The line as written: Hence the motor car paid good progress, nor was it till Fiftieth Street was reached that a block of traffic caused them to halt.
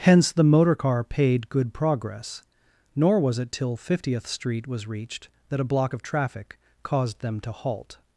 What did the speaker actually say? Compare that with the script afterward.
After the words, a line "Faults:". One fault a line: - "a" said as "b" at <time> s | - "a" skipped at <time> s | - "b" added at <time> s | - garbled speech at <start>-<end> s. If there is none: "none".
Hence the motor car paid good progress, nor was it till Fiftieth Street was reached that a block of traffic caused them to halt.
Faults:
none